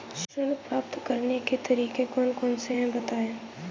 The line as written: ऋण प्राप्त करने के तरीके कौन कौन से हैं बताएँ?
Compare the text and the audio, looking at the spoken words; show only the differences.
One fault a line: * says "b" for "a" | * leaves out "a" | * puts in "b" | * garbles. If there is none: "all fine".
all fine